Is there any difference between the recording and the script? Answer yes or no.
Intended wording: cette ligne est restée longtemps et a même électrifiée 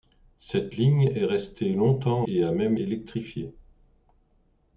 no